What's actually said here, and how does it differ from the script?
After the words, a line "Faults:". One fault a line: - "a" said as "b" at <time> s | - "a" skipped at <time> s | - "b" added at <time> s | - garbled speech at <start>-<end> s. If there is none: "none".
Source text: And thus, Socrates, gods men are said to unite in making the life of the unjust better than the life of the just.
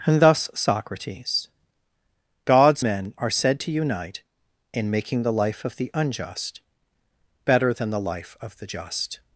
And thus, Socrates, gods men are said to unite in making the life of the unjust better than the life of the just.
Faults:
none